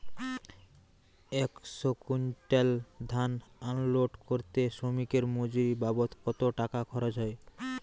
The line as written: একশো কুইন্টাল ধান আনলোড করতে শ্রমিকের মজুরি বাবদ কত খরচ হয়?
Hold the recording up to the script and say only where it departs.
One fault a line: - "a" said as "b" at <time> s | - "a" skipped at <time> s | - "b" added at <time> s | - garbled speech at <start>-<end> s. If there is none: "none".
- "টাকা" added at 6.6 s